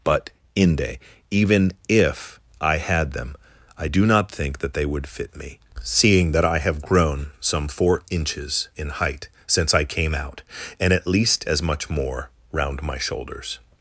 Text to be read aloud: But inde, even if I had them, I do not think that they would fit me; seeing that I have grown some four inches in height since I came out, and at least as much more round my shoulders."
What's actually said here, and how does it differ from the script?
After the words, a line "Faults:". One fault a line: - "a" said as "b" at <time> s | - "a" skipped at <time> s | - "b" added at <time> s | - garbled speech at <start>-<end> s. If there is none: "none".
But inde, even if I had them, I do not think that they would fit me; seeing that I have grown some four inches in height since I came out, and at least as much more round my shoulders."
Faults:
none